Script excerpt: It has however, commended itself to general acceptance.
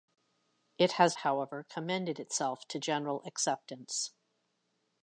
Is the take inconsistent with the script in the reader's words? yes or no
no